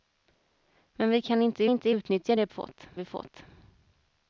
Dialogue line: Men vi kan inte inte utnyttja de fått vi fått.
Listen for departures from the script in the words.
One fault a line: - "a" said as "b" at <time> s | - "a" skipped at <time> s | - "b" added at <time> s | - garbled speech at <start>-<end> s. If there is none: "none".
none